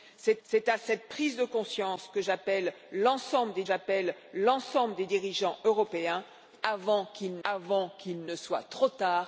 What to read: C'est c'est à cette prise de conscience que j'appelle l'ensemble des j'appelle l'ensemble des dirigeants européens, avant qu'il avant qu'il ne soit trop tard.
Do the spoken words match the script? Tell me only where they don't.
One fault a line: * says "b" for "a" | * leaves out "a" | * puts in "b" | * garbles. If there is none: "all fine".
all fine